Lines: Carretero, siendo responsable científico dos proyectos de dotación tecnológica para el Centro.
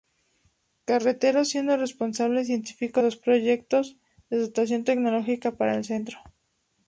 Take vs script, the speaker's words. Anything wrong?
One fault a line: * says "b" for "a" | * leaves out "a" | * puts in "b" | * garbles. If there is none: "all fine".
all fine